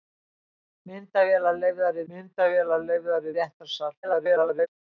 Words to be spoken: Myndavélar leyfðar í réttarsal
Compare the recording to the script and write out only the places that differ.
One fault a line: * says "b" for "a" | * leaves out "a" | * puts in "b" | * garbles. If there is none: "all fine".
* puts in "myndavélar leyfðar"
* garbles